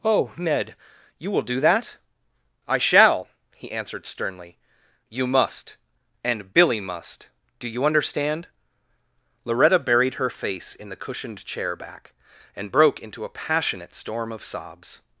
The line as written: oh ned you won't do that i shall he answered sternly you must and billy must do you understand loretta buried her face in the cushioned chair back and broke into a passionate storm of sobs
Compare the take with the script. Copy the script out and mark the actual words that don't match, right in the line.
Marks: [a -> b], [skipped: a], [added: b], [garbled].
oh ned you [won't -> will] do that i shall he answered sternly you must and billy must do you understand loretta buried her face in the cushioned chair back and broke into a passionate storm of sobs